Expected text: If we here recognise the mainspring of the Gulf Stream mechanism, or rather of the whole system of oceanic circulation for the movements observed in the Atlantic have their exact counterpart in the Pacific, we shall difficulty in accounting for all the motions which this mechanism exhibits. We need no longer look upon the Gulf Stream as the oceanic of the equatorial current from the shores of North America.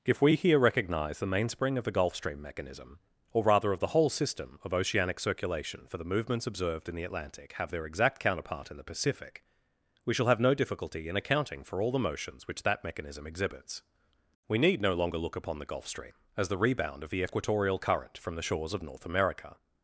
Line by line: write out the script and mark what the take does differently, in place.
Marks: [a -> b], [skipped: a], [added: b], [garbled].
If we here recognise the mainspring of the Gulf Stream mechanism, or rather of the whole system of oceanic circulation for the movements observed in the Atlantic have their exact counterpart in the Pacific, we shall [added: have no] difficulty in accounting for all the motions which [this -> that] mechanism exhibits. We need no longer look upon the Gulf Stream as the [oceanic -> rebound] of the equatorial current from the shores of North America.